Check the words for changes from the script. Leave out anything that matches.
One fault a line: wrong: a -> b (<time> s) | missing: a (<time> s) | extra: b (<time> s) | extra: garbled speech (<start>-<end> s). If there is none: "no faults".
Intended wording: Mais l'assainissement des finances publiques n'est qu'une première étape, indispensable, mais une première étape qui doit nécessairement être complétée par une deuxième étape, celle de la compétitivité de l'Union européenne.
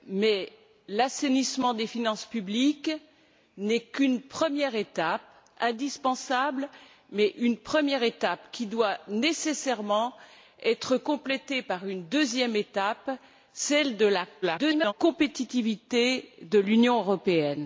extra: garbled speech (14.4-14.9 s)